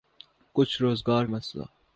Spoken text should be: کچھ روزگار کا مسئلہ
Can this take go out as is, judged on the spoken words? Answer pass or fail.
fail